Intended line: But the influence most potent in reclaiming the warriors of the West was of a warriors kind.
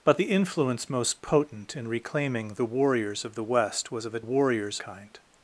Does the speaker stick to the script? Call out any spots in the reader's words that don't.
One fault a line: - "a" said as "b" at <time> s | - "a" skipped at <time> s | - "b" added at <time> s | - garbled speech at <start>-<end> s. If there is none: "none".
none